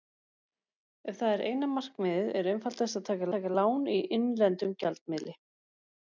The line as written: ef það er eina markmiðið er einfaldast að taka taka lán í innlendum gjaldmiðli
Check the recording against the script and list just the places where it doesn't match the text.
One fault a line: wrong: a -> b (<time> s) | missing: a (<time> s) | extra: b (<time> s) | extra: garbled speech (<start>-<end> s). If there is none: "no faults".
no faults